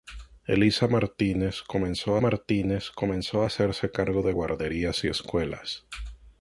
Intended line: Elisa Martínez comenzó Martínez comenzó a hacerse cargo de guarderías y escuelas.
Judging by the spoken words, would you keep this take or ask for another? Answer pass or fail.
pass